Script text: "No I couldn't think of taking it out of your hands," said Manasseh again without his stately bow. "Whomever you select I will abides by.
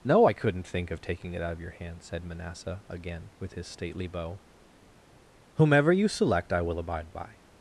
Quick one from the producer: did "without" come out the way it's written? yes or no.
no